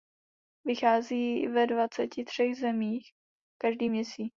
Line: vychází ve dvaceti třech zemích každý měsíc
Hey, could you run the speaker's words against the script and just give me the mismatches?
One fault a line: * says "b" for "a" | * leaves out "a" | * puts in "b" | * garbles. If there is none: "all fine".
all fine